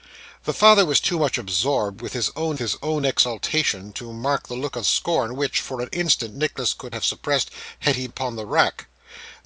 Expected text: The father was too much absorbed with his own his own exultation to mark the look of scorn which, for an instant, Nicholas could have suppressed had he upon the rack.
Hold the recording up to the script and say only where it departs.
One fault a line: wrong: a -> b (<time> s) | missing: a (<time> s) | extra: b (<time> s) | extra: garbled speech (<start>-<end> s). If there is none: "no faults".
no faults